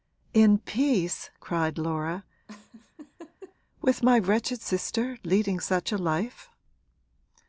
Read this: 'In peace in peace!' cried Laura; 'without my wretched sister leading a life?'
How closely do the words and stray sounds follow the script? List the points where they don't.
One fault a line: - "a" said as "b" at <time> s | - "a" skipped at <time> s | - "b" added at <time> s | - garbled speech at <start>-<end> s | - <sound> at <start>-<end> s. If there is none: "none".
- "in peace" skipped at 1.3 s
- laugh at 2.5-3.6 s
- "without" said as "with" at 3.8 s
- "such" added at 5.6 s